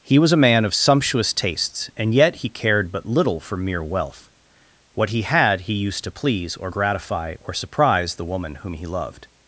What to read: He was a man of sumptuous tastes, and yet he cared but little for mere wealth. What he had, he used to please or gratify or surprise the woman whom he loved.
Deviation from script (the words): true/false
false